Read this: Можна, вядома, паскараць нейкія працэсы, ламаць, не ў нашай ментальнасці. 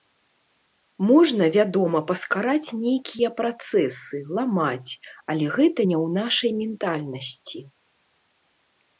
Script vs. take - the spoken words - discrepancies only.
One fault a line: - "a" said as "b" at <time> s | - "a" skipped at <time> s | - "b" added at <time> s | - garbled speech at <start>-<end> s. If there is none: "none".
- "але гэта" added at 5.3 s